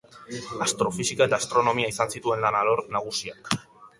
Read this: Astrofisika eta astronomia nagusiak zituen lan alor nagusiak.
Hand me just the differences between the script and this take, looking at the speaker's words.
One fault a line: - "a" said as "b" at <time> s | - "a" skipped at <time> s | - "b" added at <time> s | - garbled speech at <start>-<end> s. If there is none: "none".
- "nagusiak" said as "izan" at 1.9 s